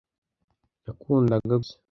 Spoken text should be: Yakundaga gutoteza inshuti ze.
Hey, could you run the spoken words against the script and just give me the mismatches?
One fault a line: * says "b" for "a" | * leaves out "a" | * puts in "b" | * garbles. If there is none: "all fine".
* leaves out "gutoteza inshuti"